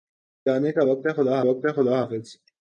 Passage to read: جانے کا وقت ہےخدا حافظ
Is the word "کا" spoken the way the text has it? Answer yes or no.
yes